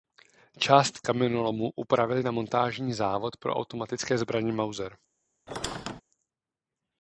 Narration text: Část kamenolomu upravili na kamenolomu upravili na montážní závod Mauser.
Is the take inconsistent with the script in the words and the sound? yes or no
yes